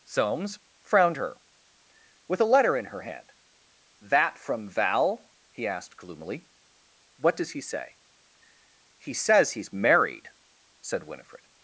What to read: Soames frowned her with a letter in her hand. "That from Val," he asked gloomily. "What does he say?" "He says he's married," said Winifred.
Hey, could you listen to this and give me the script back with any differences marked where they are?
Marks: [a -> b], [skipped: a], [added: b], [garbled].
Soames frowned her with a letter in her hand. "That from Val," he asked gloomily. "What does he say?" "He says he's married," said Winifred.